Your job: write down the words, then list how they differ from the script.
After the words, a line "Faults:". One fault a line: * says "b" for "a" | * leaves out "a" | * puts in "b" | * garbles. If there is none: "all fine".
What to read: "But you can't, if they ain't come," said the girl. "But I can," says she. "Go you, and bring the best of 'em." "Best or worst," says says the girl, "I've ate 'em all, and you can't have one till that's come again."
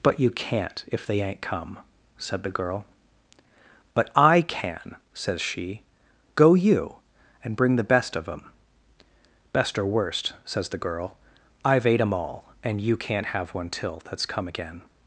"But you can't, if they ain't come," said the girl. "But I can," says she. "Go you, and bring the best of 'em." "Best or worst," says the girl, "I've ate 'em all, and you can't have one till that's come again."
Faults:
* leaves out "says"